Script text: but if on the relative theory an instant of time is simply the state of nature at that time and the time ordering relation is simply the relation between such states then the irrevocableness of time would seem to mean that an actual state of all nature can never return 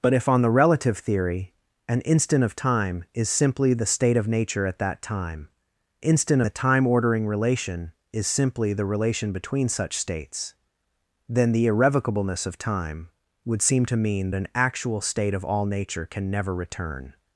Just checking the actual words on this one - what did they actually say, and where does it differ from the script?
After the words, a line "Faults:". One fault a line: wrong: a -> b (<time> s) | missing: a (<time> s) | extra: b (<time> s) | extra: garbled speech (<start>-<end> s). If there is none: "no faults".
but if on the relative theory an instant of time is simply the state of nature at that time instant the time ordering relation is simply the relation between such states then the irrevocableness of time would seem to mean an actual state of all nature can never return
Faults:
wrong: and -> instant (6.0 s)
missing: that (14.3 s)